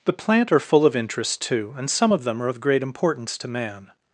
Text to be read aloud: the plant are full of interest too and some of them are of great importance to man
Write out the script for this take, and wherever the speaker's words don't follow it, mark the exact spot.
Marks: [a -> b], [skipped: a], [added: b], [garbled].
the plant are full of interest too and some of them are of great importance to man